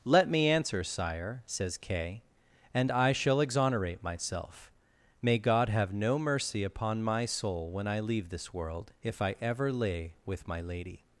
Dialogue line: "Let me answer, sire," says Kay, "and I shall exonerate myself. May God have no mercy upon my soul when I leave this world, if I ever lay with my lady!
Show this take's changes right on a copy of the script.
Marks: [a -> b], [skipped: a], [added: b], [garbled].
"Let me answer, sire," says Kay, "and I shall exonerate myself. May God have no mercy upon my soul when I leave this world, if I ever lay with my lady!